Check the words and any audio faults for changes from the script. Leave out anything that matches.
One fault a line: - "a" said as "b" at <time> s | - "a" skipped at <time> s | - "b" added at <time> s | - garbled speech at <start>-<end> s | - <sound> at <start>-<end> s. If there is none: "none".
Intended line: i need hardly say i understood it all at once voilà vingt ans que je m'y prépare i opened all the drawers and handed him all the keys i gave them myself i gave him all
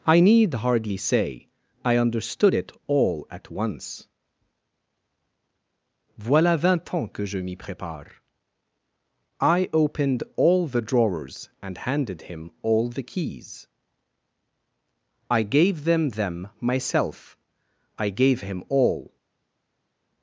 - "them" added at 16.1 s